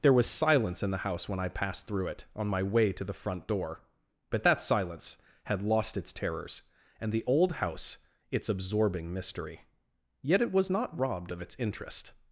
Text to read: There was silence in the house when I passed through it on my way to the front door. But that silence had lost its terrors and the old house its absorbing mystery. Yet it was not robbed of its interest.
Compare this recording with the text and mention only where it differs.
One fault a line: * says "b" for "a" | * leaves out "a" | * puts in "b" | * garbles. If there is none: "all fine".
all fine